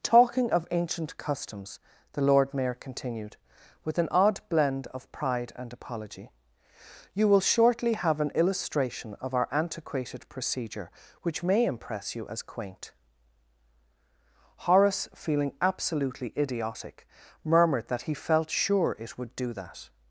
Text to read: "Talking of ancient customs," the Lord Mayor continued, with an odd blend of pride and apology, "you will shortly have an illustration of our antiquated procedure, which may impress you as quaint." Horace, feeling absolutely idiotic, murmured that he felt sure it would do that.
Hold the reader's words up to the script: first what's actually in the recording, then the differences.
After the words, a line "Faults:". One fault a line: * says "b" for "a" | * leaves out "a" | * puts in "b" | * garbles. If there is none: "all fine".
"Talking of ancient customs," the Lord Mayor continued, with an odd blend of pride and apology, "you will shortly have an illustration of our antiquated procedure, which may impress you as quaint." Horace, feeling absolutely idiotic, murmured that he felt sure it would do that.
Faults:
all fine